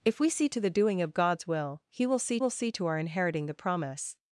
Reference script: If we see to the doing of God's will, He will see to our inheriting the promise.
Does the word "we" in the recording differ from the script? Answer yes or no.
no